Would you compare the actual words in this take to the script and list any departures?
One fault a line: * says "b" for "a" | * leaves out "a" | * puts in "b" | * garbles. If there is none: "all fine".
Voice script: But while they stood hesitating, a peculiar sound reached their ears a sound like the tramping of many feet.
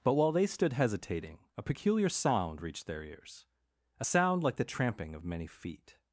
all fine